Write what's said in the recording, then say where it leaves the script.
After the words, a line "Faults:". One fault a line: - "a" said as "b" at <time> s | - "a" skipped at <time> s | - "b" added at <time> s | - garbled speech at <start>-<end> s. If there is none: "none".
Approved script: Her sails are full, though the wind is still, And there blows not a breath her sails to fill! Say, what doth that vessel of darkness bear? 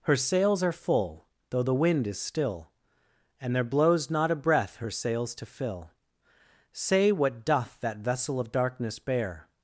Her sails are full, though the wind is still, And there blows not a breath her sails to fill! Say, what doth that vessel of darkness bear?
Faults:
none